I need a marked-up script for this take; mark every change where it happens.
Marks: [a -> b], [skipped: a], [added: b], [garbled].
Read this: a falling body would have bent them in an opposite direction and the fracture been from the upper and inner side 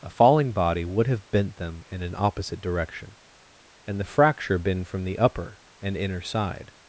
a falling body would have bent them in an opposite direction and the fracture been from the upper and inner side